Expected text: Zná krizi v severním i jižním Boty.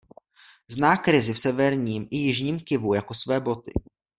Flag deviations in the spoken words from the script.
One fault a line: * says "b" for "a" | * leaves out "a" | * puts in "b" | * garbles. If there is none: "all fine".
* puts in "Kivu jako své"